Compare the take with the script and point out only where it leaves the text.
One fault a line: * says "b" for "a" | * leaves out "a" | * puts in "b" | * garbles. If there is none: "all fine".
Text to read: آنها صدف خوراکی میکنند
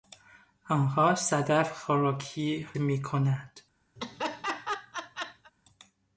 all fine